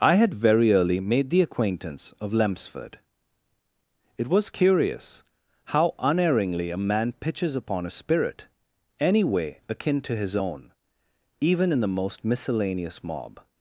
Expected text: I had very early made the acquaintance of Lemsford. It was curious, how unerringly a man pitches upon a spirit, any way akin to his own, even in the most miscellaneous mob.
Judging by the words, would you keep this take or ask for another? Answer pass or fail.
pass